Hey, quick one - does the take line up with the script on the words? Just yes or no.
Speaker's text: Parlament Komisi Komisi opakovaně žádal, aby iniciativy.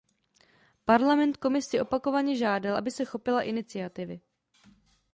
no